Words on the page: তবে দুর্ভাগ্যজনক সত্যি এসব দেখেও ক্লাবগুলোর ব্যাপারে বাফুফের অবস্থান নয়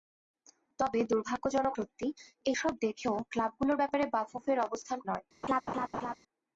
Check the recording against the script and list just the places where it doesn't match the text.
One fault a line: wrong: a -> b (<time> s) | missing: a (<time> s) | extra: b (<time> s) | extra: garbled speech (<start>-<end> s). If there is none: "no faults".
no faults